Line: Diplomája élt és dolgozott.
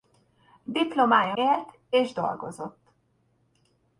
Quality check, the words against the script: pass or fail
pass